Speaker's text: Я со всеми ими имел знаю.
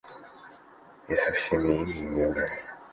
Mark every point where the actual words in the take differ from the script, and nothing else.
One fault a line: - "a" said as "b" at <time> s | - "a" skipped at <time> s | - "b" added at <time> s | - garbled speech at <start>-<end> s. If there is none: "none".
none